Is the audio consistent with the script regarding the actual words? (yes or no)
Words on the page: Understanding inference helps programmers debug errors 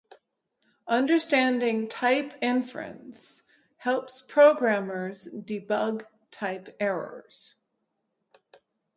no